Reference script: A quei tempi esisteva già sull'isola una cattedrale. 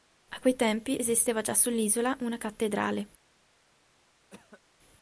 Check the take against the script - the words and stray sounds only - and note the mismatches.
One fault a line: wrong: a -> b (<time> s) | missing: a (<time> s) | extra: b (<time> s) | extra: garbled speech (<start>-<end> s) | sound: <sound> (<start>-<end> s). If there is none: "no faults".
sound: cough (4.3-4.6 s)